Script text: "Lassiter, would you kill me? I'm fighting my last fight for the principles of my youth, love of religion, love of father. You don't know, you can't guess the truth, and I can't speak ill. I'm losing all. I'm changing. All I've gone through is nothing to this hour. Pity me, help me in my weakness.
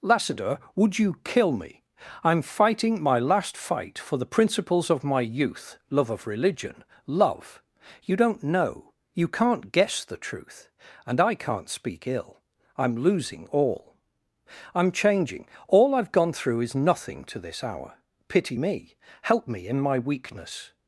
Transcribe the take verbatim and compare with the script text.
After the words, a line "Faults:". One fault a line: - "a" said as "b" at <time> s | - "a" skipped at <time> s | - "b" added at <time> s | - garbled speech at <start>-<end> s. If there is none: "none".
"Lassiter, would you kill me? I'm fighting my last fight for the principles of my youth, love of religion, love. You don't know, you can't guess the truth, and I can't speak ill. I'm losing all. I'm changing. All I've gone through is nothing to this hour. Pity me, help me in my weakness.
Faults:
- "of father" skipped at 7.6 s